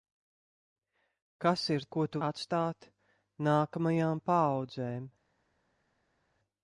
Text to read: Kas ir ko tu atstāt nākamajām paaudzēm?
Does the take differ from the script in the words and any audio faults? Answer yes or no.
no